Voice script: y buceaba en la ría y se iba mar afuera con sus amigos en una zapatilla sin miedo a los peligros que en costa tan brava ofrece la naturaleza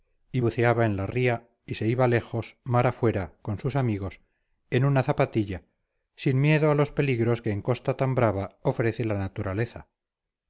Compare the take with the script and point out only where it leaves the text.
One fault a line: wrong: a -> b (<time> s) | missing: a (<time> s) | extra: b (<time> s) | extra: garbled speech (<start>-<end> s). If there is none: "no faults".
extra: lejos (2.1 s)